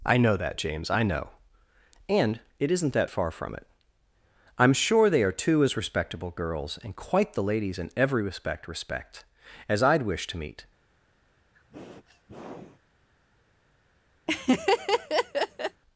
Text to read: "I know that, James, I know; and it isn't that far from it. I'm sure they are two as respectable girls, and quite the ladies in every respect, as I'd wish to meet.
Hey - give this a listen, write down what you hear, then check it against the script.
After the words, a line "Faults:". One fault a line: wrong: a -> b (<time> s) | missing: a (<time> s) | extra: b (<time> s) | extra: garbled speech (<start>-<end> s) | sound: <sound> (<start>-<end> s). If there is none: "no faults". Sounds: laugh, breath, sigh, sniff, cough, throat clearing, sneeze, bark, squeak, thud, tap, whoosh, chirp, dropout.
"I know that, James, I know; and it isn't that far from it. I'm sure they are two as respectable girls, and quite the ladies in every respect respect, as I'd wish to meet.
Faults:
extra: respect (8.7 s)
sound: sniff (11.5-12.8 s)
sound: laugh (14.3-15.8 s)